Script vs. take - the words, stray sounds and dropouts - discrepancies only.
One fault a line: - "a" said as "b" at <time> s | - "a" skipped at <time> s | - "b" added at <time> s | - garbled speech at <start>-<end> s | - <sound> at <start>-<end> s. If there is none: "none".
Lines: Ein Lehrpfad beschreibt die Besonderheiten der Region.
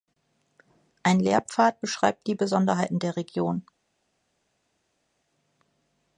none